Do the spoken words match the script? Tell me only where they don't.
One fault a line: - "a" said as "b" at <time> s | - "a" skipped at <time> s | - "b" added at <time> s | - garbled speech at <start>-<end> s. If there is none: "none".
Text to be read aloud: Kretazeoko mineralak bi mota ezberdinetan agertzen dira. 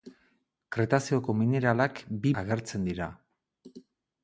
- "mota ezberdinetan" skipped at 2.3 s